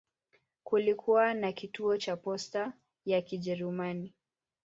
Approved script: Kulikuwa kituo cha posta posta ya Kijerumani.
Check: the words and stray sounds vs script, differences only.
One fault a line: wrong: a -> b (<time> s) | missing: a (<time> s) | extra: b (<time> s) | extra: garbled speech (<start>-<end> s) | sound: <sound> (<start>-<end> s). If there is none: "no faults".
extra: na (1.3 s)
missing: posta (2.7 s)